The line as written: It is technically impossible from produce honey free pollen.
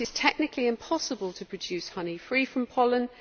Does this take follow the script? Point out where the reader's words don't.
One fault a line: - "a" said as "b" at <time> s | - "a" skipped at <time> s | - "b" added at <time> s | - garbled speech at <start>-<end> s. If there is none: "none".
- "from" said as "to" at 1.3 s
- "from" added at 2.4 s